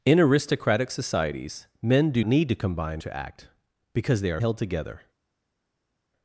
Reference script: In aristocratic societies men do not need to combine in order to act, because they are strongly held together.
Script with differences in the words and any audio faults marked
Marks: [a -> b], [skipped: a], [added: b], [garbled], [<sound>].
In aristocratic societies men do [skipped: not] need to combine [skipped: in order] to act, because they are [skipped: strongly] held together.